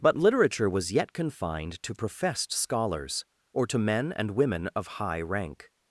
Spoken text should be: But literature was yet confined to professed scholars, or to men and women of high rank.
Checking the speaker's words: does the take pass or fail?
pass